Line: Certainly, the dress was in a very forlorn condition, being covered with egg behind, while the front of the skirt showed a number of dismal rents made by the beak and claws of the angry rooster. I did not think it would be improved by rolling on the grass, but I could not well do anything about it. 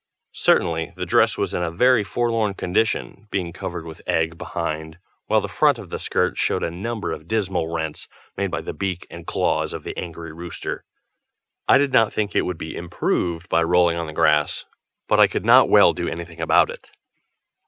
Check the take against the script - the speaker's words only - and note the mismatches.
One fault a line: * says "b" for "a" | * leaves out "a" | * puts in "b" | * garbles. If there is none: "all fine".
all fine